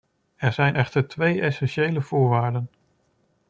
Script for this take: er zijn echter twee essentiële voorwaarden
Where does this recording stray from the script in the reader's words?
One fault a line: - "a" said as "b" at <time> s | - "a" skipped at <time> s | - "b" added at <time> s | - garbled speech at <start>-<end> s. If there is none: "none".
none